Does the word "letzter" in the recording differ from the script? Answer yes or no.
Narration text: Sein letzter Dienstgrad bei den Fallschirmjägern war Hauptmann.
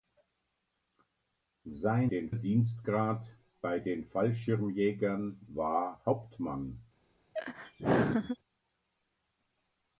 yes